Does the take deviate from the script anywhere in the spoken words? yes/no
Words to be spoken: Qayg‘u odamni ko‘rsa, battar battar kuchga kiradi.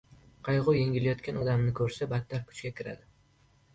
yes